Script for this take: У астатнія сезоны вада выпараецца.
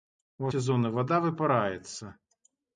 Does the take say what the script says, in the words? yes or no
no